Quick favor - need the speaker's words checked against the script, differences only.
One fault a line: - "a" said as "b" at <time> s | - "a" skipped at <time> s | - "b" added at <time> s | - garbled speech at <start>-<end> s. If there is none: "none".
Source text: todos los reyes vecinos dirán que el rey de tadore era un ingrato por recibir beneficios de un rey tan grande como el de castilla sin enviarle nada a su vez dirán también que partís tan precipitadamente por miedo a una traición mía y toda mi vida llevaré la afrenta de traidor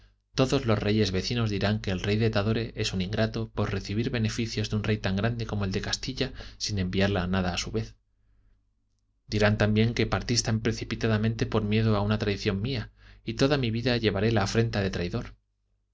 - "era" said as "es" at 2.8 s